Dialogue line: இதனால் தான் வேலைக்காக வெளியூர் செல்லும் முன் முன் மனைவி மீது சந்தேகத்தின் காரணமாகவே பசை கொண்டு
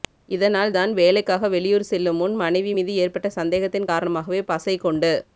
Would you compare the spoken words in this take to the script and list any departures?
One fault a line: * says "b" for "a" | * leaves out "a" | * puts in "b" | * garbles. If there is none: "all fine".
* leaves out "முன்"
* puts in "ஏற்பட்ட"